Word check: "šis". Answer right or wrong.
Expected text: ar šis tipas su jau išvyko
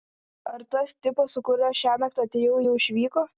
wrong